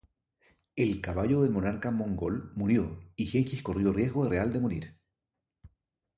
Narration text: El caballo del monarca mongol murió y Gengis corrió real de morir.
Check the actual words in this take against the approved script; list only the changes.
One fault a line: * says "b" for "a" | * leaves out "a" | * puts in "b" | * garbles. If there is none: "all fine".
* puts in "riesgo"